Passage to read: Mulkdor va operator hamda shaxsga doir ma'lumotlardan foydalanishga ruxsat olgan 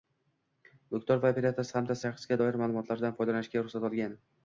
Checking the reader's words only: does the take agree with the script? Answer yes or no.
yes